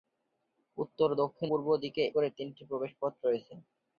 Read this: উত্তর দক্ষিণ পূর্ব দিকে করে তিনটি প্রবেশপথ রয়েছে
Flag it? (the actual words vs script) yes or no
no